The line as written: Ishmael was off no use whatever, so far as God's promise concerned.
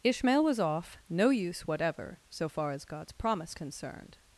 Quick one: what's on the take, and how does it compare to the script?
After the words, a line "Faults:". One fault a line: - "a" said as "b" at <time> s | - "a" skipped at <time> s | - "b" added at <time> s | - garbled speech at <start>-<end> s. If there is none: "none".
Ishmael was off no use whatever, so far as God's promise concerned.
Faults:
none